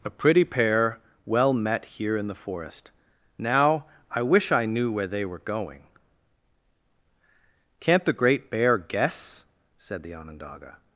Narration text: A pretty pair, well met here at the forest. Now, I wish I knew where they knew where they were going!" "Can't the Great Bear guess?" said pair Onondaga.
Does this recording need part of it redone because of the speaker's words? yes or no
yes